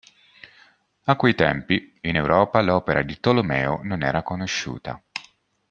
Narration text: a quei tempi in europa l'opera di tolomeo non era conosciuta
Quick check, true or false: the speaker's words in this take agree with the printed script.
true